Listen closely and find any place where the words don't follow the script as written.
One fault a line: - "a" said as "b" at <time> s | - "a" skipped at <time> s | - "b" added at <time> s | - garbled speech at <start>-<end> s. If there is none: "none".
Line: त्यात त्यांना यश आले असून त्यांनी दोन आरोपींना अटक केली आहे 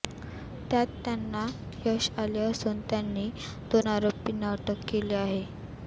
none